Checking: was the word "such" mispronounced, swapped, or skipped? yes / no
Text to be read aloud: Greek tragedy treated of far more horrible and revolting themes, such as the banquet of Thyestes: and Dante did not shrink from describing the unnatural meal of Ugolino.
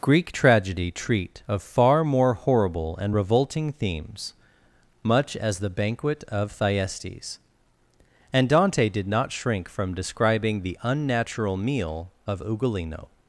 yes